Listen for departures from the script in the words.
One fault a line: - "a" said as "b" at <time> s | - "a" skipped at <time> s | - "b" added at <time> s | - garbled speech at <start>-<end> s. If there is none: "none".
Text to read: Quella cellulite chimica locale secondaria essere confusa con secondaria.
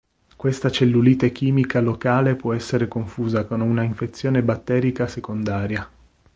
- "Quella" said as "Questa" at 0.3 s
- "secondaria" said as "può" at 2.3 s
- "una infezione batterica" added at 3.6 s